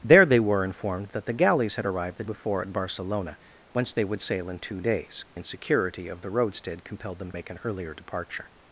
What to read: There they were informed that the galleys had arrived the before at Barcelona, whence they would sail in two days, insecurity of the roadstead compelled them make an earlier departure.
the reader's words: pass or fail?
pass